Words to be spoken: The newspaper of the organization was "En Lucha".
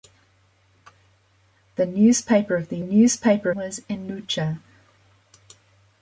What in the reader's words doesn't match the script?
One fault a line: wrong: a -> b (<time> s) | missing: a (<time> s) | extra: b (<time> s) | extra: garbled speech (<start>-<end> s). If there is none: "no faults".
wrong: organization -> newspaper (2.8 s)